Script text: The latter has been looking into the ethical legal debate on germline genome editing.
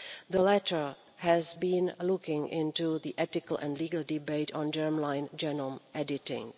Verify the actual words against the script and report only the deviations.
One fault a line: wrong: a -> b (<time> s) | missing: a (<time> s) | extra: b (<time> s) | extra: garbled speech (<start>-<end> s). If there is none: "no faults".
extra: and (3.6 s)